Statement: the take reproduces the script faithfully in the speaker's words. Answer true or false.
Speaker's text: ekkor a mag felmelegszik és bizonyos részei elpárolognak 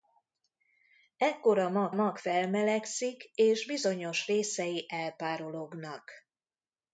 false